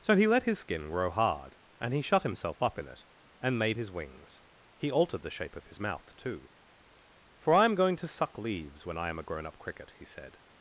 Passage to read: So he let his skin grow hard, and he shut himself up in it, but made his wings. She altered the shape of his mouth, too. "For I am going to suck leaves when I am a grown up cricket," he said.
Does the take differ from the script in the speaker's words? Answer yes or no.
yes